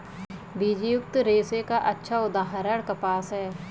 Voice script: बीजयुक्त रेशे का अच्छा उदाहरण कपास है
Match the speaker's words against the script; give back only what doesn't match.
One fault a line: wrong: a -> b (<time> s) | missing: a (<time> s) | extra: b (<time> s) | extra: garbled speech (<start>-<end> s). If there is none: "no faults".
no faults